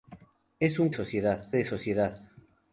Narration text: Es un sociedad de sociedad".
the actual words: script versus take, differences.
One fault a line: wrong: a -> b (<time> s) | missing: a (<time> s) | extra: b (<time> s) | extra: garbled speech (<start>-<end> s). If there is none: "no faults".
no faults